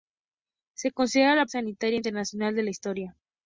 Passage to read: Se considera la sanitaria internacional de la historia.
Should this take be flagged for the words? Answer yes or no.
no